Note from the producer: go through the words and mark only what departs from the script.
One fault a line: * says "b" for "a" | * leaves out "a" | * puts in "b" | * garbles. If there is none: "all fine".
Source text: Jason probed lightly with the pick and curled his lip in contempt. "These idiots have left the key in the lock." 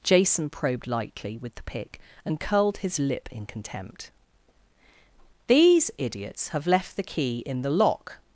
all fine